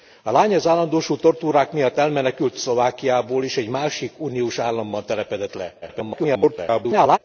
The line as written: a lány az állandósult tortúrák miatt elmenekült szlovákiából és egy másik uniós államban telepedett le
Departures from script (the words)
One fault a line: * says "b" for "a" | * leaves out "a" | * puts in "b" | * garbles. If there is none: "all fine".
* garbles